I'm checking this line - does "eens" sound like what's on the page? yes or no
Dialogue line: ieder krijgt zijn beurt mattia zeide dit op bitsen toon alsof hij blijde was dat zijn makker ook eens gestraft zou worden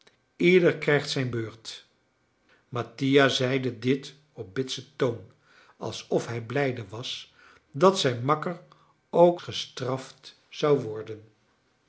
no